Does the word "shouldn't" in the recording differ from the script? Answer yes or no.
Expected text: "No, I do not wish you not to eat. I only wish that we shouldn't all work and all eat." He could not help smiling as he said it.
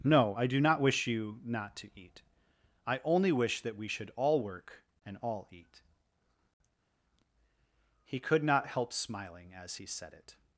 yes